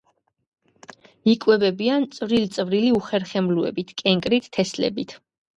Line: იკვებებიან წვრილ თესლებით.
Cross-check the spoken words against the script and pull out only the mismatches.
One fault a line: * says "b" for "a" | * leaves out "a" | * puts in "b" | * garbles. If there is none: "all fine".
* puts in "წვრილი უხერხემლოებით კენკრით"